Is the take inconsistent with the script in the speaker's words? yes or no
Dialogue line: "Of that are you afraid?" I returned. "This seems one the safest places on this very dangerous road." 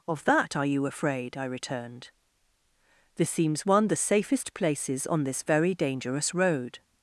no